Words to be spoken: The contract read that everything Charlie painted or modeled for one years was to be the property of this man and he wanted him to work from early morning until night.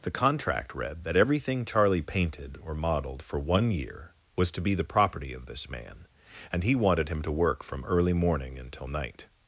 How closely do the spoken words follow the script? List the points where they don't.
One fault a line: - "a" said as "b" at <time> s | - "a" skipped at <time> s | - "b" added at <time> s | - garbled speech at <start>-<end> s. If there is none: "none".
- "years" said as "year" at 3.7 s